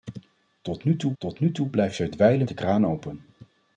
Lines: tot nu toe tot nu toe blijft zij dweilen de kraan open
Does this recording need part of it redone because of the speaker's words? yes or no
no